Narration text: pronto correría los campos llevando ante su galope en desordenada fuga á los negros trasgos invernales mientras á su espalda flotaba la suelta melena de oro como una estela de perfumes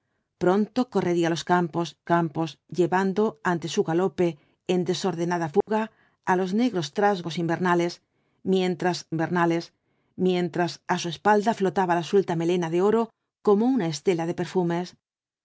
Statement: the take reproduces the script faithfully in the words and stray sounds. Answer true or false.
false